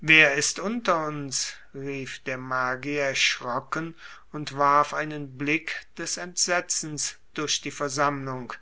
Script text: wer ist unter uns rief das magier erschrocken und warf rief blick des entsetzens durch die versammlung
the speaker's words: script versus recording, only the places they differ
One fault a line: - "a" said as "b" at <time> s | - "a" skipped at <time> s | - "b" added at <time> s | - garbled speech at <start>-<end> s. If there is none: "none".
- "das" said as "der" at 2.2 s
- "rief" said as "einen" at 5.0 s